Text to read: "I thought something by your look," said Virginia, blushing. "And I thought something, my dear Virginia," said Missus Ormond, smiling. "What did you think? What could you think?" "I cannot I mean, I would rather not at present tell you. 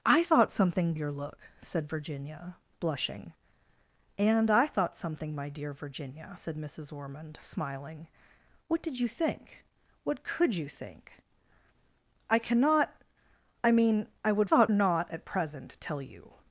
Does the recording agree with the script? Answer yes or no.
no